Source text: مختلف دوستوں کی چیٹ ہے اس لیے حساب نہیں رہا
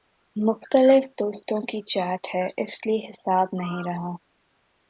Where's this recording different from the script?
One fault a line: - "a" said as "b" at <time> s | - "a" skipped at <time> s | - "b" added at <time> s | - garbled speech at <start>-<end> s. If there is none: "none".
none